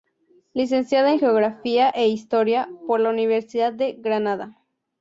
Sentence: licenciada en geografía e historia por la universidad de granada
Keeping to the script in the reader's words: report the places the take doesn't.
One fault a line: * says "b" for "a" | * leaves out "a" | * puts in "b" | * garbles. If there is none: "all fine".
all fine